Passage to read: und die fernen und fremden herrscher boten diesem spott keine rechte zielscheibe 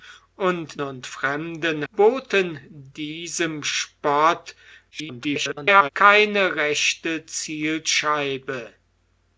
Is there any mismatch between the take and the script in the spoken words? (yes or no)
yes